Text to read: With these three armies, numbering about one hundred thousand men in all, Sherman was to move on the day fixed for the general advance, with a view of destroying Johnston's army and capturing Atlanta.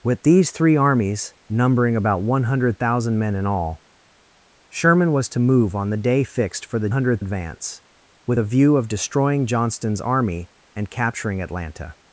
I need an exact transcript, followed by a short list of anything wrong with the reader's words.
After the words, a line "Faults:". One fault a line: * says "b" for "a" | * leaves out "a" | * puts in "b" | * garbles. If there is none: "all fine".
With these three armies, numbering about one hundred thousand men in all, Sherman was to move on the day fixed for the hundred advance, with a view of destroying Johnston's army and capturing Atlanta.
Faults:
* says "hundred" for "general"